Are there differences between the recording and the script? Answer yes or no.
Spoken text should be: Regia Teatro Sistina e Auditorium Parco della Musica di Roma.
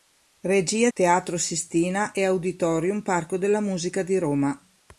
no